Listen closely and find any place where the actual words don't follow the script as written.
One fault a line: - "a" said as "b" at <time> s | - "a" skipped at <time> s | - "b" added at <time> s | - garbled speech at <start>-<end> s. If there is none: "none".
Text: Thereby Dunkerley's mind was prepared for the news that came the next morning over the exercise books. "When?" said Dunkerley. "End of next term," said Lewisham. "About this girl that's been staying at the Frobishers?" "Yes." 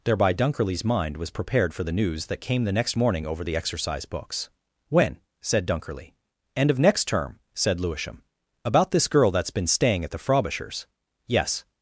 none